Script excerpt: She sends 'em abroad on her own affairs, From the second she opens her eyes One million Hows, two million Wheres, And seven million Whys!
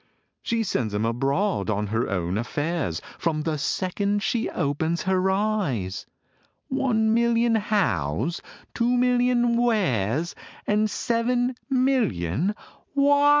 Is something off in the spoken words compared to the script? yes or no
no